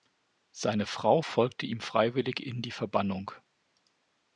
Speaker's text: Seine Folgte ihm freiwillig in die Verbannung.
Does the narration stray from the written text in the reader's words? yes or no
yes